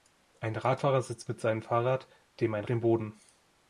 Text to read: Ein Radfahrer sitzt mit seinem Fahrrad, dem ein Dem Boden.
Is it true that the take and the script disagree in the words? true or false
false